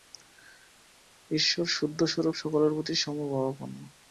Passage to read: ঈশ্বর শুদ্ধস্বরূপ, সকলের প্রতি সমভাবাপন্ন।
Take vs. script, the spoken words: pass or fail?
pass